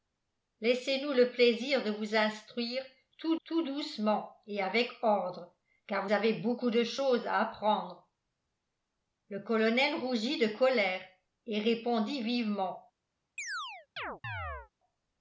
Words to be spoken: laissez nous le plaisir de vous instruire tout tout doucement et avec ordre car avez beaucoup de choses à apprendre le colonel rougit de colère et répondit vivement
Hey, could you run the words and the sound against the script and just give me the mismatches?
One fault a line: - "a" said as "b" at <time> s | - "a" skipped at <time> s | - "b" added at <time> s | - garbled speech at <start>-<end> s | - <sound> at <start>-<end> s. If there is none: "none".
- chirp at 13.4-14.7 s